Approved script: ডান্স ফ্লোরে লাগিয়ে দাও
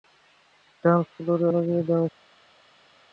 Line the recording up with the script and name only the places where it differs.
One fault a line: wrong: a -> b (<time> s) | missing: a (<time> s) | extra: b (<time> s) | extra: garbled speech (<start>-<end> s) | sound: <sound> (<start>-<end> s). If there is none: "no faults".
no faults